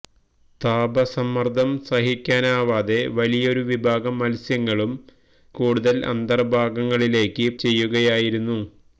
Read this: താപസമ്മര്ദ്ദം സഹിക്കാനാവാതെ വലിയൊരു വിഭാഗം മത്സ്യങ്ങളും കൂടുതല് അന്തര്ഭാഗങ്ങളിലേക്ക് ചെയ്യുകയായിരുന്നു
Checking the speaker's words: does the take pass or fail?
pass